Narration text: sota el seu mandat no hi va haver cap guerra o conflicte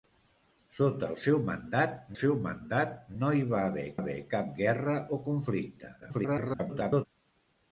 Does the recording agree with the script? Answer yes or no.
no